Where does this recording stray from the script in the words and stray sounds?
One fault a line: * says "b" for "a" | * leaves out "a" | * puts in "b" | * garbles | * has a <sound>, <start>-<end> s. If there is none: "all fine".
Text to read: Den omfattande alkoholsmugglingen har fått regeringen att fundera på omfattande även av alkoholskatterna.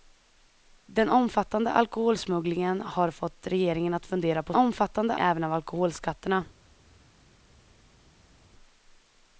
all fine